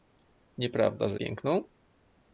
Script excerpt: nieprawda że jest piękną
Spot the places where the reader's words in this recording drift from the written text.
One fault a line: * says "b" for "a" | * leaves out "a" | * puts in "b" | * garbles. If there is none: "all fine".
* leaves out "jest"